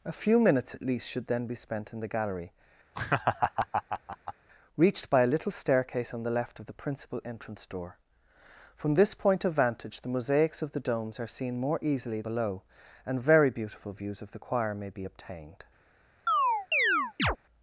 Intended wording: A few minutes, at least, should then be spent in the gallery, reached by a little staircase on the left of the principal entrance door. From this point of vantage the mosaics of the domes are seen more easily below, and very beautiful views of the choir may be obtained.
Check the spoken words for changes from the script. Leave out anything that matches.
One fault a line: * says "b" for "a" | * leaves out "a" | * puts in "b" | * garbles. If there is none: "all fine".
all fine